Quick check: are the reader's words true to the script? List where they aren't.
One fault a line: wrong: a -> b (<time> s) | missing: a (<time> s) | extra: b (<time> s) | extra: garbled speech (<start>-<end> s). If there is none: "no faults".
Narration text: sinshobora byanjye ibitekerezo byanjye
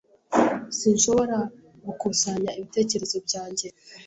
wrong: byanjye -> gukusanya (1.9 s)